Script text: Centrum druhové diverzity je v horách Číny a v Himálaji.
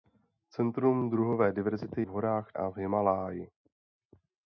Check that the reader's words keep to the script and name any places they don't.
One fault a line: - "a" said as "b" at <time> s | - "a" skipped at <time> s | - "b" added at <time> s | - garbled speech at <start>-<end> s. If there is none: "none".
- "je" skipped at 2.0 s
- "Číny" skipped at 2.5 s